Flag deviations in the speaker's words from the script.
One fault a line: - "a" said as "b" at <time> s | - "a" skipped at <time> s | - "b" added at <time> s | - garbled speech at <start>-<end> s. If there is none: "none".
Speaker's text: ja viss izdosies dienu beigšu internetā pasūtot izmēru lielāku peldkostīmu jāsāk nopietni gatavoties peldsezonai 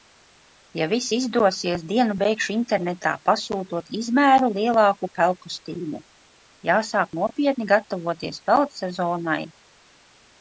none